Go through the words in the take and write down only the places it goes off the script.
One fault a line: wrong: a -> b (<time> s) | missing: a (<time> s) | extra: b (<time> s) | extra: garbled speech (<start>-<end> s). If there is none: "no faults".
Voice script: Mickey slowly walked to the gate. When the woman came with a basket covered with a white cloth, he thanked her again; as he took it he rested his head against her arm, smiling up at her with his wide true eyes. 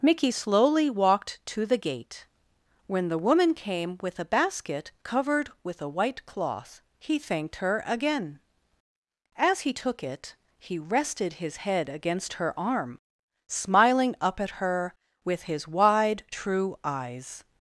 no faults